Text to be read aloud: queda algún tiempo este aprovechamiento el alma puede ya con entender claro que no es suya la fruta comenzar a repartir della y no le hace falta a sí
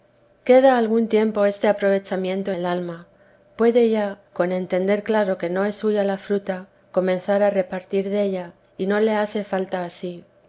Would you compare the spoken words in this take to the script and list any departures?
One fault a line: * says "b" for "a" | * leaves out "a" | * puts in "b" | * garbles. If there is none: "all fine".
all fine